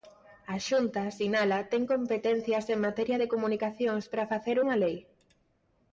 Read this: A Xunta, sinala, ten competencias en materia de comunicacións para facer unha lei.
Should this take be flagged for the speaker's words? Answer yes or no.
no